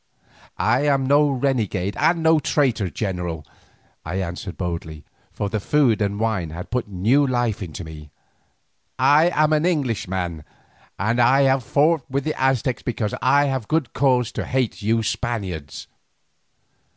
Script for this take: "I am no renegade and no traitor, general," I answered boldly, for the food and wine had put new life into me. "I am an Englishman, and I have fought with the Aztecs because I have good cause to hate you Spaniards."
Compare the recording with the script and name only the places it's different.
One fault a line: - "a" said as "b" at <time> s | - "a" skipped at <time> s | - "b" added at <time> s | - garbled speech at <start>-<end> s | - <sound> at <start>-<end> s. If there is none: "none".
none